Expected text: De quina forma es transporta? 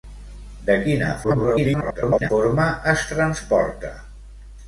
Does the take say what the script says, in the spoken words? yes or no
no